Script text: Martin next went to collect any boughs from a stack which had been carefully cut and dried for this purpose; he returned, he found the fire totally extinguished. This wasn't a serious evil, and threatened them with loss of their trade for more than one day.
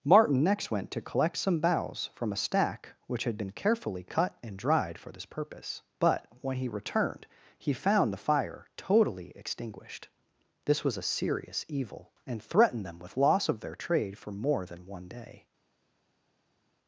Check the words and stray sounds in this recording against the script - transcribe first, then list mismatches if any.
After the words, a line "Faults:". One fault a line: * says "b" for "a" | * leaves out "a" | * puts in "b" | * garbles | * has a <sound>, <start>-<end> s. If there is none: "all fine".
Martin next went to collect some boughs from a stack which had been carefully cut and dried for this purpose; but, when he returned, he found the fire totally extinguished. This was a serious evil, and threatened them with loss of their trade for more than one day.
Faults:
* says "some" for "any"
* puts in "but when"
* says "was" for "wasn't"